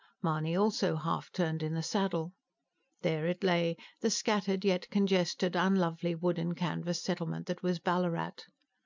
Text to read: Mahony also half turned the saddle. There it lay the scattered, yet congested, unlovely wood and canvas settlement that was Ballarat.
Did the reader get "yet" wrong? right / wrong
right